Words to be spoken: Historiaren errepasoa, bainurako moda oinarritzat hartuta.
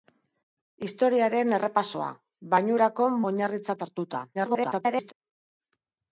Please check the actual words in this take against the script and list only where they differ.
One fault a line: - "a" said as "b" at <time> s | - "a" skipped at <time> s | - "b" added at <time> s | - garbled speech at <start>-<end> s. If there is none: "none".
- "moda" skipped at 3.1 s
- garbled speech at 4.3-5.1 s